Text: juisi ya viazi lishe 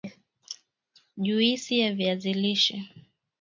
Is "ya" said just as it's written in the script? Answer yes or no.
yes